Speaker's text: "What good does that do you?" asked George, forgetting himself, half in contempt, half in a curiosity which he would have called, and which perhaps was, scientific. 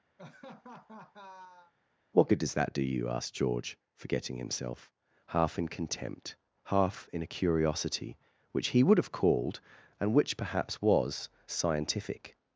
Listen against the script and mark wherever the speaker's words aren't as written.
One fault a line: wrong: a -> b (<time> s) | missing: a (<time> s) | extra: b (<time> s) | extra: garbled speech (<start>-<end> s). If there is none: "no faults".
no faults